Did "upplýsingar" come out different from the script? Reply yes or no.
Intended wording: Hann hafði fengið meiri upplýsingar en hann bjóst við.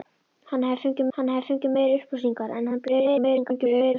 no